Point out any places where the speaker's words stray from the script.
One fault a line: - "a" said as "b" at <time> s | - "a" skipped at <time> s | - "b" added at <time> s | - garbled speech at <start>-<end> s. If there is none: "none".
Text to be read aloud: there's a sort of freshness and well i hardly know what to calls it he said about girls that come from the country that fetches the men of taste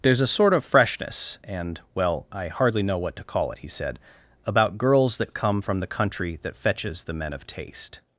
- "calls" said as "call" at 3.2 s